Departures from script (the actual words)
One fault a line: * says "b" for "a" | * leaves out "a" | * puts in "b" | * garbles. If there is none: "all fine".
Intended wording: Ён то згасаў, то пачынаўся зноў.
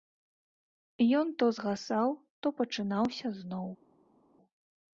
all fine